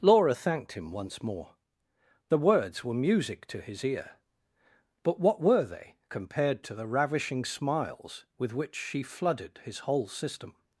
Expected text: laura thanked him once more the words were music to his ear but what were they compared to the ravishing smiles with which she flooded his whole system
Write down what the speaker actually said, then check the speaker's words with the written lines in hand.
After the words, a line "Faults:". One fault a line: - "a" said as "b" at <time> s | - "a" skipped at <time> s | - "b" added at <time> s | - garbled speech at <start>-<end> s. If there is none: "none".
laura thanked him once more the words were music to his ear but what were they compared to the ravishing smiles with which she flooded his whole system
Faults:
none